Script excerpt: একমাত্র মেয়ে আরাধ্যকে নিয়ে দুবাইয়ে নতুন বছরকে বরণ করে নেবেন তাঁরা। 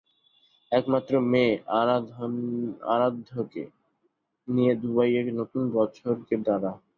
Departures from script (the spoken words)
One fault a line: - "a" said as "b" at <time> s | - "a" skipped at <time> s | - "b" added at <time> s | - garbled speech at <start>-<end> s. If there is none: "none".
- "বরণ করে নেবেন" skipped at 6.3 s